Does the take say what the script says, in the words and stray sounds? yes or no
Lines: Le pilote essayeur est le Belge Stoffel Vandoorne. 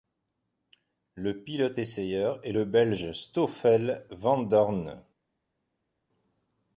yes